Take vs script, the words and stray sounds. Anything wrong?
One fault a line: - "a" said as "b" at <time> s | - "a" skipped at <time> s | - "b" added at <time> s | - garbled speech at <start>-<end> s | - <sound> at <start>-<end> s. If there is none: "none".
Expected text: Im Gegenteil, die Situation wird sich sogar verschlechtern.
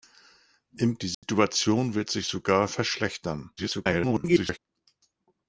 - "Gegenteil" skipped at 1.0 s
- dropout at 1.1-1.2 s
- garbled speech at 3.6-4.6 s